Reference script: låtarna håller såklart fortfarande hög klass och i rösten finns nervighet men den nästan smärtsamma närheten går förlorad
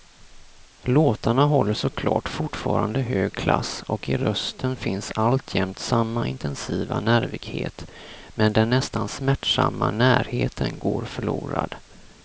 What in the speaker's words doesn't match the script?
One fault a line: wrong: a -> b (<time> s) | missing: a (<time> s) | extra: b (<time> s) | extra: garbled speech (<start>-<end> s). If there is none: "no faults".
extra: alltjämt samma intensiva (5.2 s)